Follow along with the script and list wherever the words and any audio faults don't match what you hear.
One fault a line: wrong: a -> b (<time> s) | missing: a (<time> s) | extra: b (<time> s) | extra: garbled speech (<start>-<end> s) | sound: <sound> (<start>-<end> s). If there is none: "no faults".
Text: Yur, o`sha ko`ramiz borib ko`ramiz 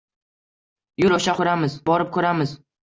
no faults